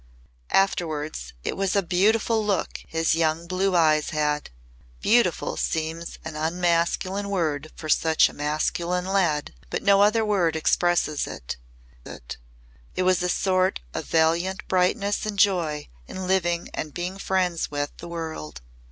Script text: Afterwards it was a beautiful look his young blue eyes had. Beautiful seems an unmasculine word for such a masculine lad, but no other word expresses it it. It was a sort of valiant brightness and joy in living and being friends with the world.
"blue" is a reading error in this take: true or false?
false